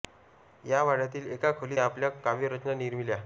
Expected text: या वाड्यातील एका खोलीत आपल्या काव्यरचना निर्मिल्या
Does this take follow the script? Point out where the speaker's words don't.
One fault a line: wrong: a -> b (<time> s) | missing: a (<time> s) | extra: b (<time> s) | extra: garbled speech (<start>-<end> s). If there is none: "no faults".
no faults